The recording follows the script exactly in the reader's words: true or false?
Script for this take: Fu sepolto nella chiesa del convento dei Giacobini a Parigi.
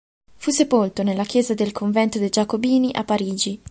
true